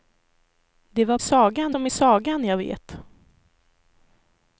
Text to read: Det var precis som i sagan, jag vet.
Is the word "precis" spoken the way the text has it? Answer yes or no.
no